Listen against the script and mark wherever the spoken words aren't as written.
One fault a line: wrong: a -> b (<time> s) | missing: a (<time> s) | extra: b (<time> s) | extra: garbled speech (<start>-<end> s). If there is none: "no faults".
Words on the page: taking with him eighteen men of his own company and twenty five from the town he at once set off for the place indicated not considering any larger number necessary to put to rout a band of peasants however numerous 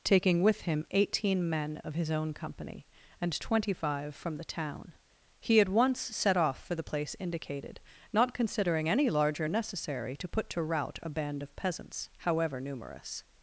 missing: number (9.5 s)